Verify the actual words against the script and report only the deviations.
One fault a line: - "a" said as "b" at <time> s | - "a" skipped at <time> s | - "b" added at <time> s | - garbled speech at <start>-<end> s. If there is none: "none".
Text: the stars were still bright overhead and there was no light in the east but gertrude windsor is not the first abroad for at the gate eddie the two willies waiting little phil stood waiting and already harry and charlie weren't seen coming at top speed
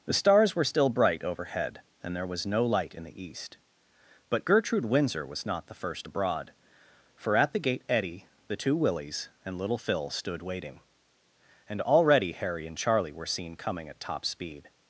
- "is" said as "was" at 5.3 s
- "waiting" said as "and" at 9.4 s
- "weren't" said as "were" at 13.1 s